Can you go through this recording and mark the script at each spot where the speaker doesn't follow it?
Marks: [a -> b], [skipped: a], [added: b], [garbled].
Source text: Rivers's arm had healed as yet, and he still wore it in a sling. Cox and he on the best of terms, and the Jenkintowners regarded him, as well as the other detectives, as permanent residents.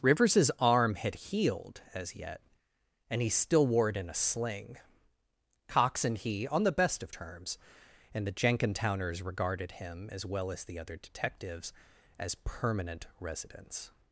Rivers's arm had healed as yet, and he still wore it in a sling. Cox and he on the best of terms, and the Jenkintowners regarded him, as well as the other detectives, as permanent residents.